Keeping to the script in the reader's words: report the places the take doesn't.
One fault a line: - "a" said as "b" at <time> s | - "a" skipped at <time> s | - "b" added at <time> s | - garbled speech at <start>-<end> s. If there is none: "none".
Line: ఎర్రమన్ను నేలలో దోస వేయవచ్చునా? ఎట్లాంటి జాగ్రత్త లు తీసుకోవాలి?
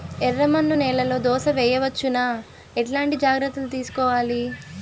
none